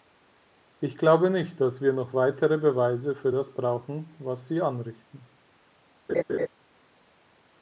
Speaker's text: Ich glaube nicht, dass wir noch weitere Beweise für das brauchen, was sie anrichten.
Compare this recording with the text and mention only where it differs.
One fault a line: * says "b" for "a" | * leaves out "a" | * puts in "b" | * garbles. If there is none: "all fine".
all fine